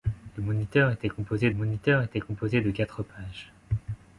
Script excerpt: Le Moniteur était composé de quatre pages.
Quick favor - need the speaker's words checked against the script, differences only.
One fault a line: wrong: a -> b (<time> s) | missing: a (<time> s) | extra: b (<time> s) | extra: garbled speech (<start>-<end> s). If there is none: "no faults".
extra: Moniteur était composé (1.5 s)